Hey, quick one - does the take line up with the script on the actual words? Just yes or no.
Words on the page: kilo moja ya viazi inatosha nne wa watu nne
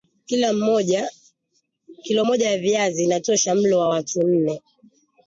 no